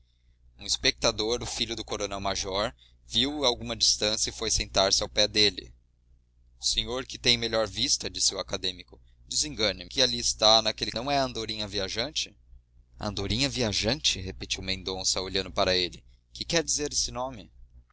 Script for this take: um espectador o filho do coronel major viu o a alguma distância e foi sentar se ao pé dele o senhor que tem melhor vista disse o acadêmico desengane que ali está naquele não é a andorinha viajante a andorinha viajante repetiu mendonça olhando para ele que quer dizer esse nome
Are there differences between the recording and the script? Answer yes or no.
no